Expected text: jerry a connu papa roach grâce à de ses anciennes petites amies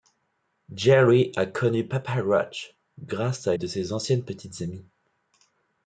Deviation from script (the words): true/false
false